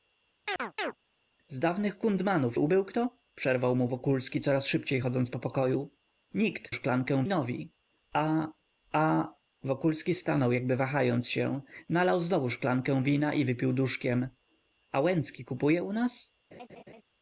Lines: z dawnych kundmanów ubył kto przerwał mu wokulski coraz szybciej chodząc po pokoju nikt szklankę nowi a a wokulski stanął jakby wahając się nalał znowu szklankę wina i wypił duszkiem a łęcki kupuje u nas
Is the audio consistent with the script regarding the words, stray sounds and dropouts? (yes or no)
no